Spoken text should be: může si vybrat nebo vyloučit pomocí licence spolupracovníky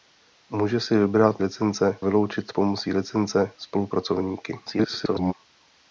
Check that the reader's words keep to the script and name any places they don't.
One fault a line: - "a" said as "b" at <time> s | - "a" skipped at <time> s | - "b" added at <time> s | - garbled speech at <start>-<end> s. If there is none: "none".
- "nebo" said as "licence" at 1.4 s
- garbled speech at 4.7-5.3 s